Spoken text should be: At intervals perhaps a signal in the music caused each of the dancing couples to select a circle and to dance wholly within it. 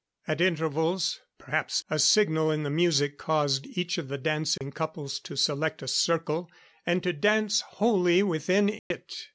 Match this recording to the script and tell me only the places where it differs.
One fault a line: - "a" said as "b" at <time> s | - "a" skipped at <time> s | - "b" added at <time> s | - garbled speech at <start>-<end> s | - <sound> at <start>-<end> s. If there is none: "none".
- dropout at 4.6-4.6 s
- dropout at 8.8-8.9 s